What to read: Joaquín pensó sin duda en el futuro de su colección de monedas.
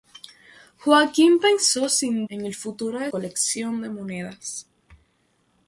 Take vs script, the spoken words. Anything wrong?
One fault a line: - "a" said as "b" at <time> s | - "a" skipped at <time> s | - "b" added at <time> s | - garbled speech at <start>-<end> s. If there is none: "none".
- "duda" skipped at 2.2 s
- "su" skipped at 3.1 s